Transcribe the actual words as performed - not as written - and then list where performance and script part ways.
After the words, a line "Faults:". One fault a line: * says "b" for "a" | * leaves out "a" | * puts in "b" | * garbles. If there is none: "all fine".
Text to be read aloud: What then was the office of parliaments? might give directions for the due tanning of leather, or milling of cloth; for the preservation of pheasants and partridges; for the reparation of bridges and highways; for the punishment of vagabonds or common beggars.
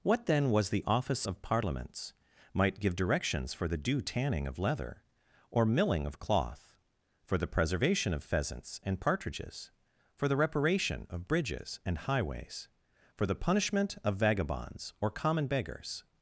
What then was the office of parliaments? might give directions for the due tanning of leather, or milling of cloth; for the preservation of pheasants and partridges; for the reparation of bridges and highways; for the punishment of vagabonds or common beggars.
Faults:
all fine